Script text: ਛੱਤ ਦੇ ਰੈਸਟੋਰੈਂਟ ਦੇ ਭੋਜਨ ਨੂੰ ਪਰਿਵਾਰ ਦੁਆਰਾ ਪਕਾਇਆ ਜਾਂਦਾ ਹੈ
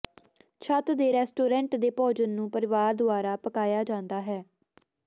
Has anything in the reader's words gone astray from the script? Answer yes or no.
no